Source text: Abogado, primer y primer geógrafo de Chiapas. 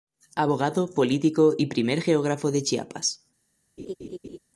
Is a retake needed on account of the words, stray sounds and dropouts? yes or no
yes